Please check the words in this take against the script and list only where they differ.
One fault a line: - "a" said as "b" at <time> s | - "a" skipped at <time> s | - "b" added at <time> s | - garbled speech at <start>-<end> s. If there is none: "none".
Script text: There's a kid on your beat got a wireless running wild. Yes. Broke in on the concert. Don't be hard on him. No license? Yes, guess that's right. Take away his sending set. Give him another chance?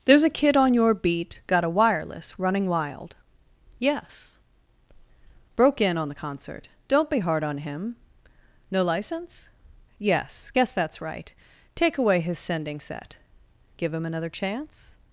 none